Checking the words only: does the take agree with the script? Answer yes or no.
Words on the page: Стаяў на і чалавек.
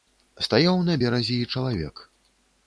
no